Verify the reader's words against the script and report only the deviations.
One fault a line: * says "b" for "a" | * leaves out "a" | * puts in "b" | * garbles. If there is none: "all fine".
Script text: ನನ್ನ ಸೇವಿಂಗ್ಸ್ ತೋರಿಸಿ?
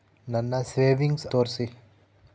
all fine